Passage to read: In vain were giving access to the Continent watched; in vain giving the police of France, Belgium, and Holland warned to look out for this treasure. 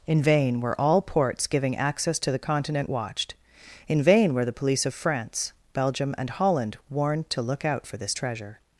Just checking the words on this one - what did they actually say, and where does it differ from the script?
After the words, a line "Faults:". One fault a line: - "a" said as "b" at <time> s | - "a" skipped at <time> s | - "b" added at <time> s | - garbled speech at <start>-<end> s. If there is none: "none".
In vain were all ports giving access to the Continent watched; in vain were the police of France, Belgium, and Holland warned to look out for this treasure.
Faults:
- "all ports" added at 0.8 s
- "giving" said as "were" at 4.3 s